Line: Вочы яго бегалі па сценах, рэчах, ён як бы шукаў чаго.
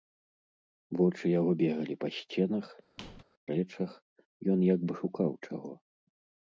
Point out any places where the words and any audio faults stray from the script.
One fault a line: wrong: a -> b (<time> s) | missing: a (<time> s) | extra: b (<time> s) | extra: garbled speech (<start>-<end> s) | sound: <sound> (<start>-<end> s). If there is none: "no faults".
sound: squeak (3.0-3.2 s)